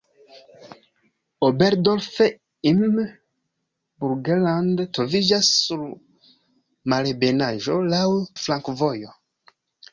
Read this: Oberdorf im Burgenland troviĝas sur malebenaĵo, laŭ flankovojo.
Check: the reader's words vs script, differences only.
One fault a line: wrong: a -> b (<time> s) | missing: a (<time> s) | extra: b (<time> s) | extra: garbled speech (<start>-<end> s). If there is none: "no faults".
no faults